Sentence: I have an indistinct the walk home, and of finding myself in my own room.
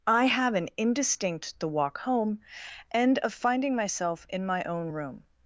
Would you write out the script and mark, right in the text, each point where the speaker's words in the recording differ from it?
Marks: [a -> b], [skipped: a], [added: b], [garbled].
I have an indistinct the walk home, and of finding myself in my own room.